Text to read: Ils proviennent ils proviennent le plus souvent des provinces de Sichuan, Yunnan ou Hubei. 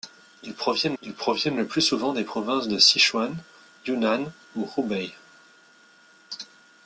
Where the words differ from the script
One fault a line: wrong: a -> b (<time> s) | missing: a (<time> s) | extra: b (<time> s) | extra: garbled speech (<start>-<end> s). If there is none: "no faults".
no faults